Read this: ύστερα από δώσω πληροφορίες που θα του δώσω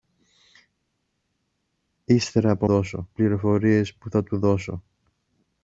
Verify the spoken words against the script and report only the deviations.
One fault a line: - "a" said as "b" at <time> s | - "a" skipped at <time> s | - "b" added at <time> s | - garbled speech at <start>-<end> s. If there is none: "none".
none